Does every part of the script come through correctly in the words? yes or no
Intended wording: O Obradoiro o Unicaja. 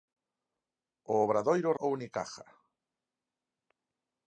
yes